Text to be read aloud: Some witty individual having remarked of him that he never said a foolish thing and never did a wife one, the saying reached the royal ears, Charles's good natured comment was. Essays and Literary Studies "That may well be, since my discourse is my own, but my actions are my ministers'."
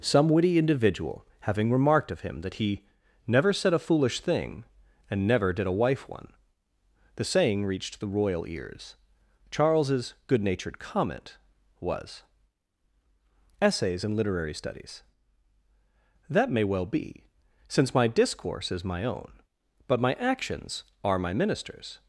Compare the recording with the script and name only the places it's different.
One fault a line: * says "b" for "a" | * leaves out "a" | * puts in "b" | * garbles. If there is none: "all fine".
all fine